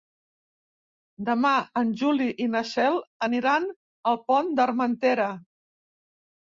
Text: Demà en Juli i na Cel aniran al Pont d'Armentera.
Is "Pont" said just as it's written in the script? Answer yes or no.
yes